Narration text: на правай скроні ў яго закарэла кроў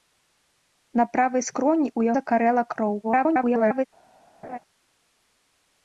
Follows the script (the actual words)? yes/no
no